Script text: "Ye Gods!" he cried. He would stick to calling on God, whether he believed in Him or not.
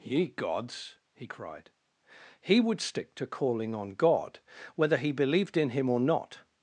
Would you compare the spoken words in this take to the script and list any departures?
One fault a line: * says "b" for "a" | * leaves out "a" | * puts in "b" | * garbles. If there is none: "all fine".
all fine